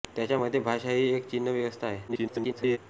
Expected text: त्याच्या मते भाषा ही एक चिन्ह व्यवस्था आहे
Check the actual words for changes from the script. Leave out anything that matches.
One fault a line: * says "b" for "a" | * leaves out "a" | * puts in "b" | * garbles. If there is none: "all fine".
* garbles